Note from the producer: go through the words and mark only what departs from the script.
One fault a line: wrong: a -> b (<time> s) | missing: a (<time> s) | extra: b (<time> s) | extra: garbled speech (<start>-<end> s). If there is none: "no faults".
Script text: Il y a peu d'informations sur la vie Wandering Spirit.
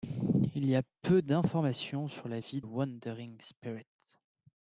no faults